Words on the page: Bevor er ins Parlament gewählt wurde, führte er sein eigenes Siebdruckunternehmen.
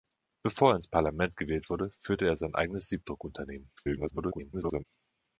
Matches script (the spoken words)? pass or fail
fail